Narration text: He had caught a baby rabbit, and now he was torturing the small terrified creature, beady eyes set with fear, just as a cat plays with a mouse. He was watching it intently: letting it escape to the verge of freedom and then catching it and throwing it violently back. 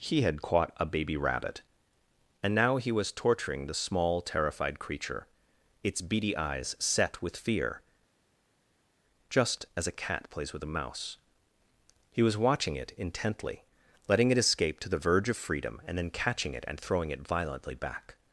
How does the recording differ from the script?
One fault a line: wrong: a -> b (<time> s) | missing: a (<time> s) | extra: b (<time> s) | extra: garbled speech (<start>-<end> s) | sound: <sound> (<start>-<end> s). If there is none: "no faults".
extra: its (5.8 s)